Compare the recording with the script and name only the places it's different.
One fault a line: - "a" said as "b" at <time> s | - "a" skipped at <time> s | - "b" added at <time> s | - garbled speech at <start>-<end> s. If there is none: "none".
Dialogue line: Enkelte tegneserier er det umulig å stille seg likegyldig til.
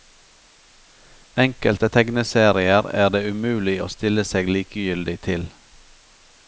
none